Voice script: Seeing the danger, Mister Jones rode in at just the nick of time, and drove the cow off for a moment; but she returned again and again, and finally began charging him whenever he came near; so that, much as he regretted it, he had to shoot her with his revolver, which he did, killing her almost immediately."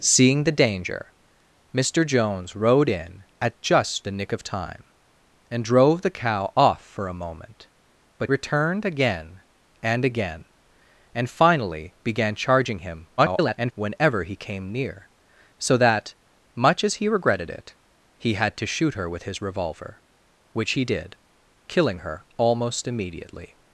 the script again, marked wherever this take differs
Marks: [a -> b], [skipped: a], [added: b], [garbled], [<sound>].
Seeing the danger, Mister Jones rode in at just the nick of time, and drove the cow off for a moment; but [skipped: she] returned again and again, and finally began charging him [garbled] whenever he came near; so that, much as he regretted it, he had to shoot her with his revolver, which he did, killing her almost immediately."